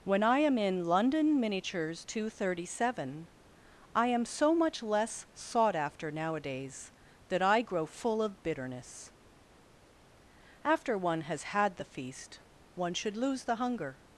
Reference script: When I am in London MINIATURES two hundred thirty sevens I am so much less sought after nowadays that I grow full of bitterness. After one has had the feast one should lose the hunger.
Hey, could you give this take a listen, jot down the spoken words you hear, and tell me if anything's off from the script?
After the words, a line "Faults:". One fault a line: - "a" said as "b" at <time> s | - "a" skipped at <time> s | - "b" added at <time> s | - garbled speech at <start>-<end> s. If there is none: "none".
When I am in London MINIATURES two hundred thirty seven I am so much less sought after nowadays that I grow full of bitterness. After one has had the feast one should lose the hunger.
Faults:
- "sevens" said as "seven" at 2.9 s